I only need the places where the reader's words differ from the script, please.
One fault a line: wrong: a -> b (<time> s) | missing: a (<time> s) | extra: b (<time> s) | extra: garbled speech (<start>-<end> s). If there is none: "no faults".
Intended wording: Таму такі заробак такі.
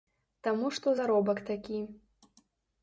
wrong: такі -> што (0.8 s)